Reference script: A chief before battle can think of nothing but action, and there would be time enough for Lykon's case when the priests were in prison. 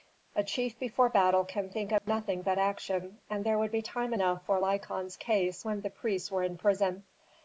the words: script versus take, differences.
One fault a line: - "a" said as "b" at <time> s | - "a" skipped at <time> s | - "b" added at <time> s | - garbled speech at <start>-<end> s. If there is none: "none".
none